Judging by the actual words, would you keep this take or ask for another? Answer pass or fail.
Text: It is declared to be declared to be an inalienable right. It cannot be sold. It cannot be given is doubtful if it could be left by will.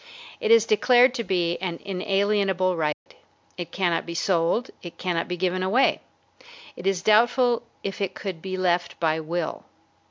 fail